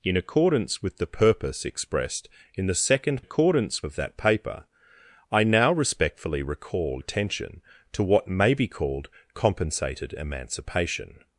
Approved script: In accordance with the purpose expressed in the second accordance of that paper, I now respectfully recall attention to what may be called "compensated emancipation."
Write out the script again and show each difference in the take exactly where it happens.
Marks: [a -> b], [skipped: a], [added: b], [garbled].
In accordance with the purpose expressed in the second accordance of that paper, I now respectfully recall attention to what may be called "compensated emancipation."